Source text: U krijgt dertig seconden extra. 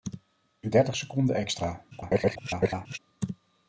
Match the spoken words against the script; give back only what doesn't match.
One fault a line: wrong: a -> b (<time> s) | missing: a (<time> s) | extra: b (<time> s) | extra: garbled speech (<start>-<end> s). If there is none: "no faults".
missing: krijgt (0.7 s)
extra: garbled speech (1.9-3.0 s)